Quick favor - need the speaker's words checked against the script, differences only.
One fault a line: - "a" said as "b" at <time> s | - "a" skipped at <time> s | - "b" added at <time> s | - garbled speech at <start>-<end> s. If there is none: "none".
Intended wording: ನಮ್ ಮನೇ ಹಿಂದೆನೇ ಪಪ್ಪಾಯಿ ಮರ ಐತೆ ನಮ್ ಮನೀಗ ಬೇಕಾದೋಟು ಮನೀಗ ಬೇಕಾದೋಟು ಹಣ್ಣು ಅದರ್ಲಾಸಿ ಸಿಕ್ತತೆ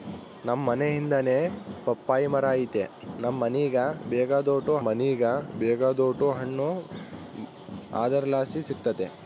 none